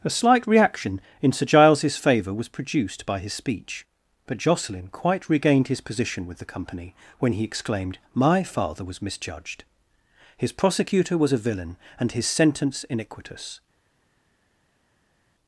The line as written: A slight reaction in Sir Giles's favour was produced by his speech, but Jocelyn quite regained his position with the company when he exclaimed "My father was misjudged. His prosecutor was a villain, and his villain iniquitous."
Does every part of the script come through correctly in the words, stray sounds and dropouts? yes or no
no